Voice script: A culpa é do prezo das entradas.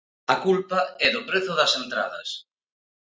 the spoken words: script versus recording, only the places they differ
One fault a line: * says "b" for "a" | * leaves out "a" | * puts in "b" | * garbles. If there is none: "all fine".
all fine